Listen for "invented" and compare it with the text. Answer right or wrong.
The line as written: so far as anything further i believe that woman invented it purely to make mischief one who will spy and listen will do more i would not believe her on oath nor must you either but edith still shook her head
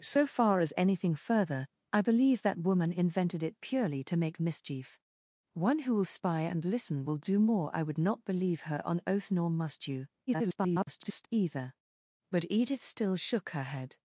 right